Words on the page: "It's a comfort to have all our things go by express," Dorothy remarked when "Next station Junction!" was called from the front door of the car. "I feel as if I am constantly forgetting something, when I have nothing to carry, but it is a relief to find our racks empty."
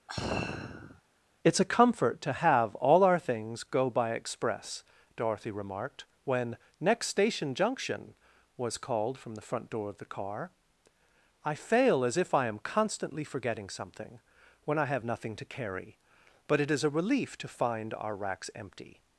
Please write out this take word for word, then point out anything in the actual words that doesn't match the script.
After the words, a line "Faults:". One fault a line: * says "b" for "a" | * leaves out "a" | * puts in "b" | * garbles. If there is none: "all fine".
"It's a comfort to have all our things go by express," Dorothy remarked when "Next station Junction!" was called from the front door of the car. "I fail as if I am constantly forgetting something, when I have nothing to carry, but it is a relief to find our racks empty."
Faults:
* says "fail" for "feel"